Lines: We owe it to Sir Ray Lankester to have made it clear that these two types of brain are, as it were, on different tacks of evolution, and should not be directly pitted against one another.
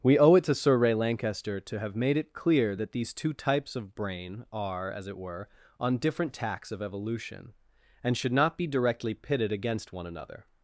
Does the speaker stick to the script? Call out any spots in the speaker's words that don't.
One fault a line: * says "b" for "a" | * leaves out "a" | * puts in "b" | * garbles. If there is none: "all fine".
all fine